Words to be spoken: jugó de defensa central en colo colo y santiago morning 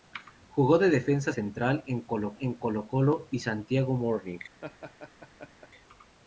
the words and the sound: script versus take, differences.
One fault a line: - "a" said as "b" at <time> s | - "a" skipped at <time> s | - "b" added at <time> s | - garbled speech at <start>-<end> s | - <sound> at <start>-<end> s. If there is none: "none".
- "en colo" added at 2.4 s
- laugh at 4.6-5.7 s